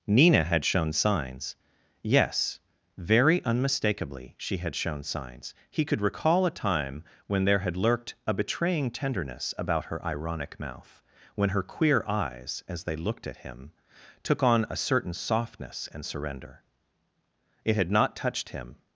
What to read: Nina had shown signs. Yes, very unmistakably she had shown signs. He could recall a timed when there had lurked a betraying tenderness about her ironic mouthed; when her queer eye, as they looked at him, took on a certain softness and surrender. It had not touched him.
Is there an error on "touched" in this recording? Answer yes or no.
no